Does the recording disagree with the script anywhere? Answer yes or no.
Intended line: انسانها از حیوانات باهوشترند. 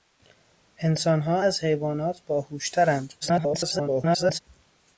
yes